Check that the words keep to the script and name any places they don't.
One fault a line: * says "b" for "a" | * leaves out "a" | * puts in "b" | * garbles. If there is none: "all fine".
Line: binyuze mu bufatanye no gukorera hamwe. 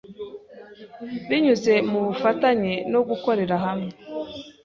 all fine